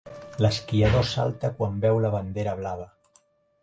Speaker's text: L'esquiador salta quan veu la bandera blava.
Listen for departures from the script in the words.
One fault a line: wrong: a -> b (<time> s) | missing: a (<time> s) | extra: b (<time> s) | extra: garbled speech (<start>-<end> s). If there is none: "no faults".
no faults